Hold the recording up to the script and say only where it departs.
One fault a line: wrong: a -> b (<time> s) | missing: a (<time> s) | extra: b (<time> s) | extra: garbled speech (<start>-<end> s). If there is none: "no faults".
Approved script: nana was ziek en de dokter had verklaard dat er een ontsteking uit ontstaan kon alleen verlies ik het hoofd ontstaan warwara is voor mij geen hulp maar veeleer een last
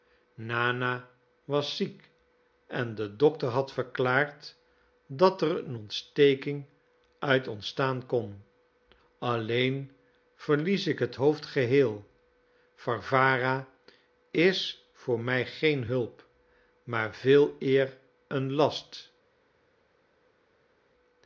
wrong: ontstaan -> geheel (11.4 s)